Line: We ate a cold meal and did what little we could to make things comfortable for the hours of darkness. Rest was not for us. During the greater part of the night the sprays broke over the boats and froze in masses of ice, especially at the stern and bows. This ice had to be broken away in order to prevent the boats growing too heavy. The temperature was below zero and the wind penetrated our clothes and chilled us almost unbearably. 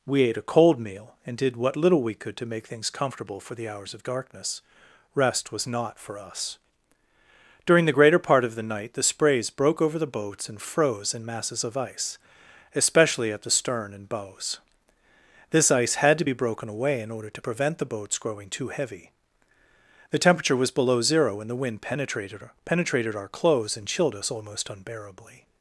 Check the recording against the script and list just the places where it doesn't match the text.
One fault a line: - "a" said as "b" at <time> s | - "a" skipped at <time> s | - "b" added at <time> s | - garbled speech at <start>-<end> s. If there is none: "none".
- "penetrated" added at 22.6 s